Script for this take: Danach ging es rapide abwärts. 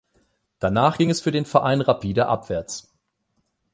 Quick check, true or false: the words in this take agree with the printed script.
false